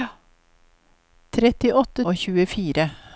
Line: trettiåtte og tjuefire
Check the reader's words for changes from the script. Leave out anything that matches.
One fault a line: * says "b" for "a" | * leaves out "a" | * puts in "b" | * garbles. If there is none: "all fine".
all fine